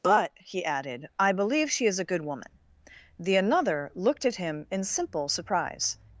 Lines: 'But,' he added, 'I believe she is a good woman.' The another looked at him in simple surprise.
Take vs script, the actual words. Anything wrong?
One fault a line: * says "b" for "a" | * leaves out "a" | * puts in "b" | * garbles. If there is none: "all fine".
all fine